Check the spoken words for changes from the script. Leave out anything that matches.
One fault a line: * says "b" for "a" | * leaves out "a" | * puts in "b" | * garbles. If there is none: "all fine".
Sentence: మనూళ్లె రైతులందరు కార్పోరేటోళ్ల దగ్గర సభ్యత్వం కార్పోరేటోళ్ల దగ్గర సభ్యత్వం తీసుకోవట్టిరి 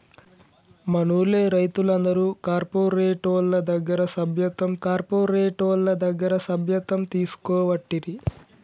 all fine